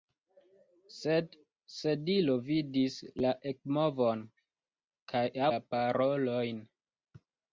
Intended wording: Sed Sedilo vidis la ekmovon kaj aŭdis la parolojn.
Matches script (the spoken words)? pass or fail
fail